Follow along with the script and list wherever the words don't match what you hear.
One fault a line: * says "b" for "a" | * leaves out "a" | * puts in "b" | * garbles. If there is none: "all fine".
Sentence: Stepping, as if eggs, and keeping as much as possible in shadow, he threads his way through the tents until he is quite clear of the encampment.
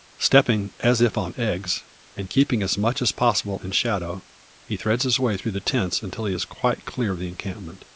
* puts in "on"